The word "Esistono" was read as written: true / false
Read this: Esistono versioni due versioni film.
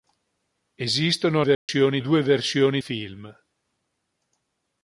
true